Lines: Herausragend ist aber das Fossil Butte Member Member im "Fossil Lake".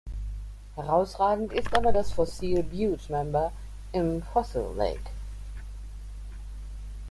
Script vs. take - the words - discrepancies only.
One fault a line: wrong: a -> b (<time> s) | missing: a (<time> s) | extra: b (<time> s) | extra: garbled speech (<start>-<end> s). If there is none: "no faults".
missing: Member (3.5 s)